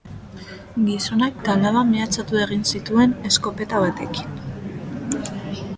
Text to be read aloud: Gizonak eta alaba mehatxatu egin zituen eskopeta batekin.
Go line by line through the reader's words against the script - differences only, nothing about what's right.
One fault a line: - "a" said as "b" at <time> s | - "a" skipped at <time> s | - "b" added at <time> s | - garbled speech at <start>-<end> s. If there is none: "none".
none